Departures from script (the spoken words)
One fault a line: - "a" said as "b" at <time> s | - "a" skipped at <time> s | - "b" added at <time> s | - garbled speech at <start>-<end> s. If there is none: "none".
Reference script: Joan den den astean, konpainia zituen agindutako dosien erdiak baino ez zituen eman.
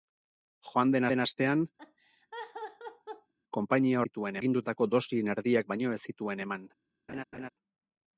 none